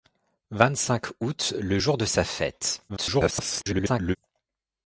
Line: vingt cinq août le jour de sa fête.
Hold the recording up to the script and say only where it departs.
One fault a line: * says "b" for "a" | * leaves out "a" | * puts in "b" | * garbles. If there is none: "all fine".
* garbles